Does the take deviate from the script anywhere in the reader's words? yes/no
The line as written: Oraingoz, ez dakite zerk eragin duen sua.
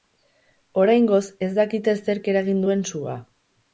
no